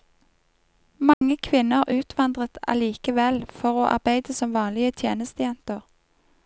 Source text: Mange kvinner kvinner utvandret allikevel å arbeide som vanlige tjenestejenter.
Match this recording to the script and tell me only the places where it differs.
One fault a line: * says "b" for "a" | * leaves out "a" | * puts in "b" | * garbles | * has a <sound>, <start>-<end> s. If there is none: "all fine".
* has a dropout, 1.1-1.2 s
* leaves out "kvinner"
* puts in "for"